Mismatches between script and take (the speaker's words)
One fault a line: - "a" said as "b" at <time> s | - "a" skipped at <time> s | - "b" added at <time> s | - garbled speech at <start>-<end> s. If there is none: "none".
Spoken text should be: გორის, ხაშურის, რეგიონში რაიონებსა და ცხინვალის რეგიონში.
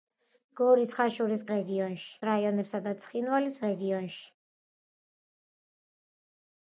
none